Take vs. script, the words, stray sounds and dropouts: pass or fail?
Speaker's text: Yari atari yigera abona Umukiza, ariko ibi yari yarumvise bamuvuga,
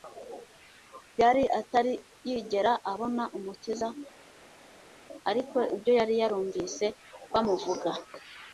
fail